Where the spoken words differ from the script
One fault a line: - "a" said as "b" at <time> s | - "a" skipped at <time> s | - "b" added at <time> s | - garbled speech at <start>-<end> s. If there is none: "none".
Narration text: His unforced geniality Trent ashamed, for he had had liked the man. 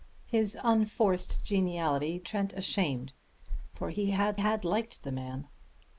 none